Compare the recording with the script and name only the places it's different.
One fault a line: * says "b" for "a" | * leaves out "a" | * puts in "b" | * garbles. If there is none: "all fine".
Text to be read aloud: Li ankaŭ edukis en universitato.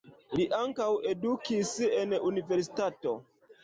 all fine